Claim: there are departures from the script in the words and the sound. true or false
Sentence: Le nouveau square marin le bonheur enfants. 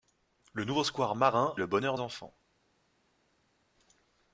false